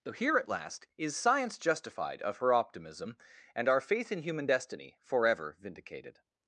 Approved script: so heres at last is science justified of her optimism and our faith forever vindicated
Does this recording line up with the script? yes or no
no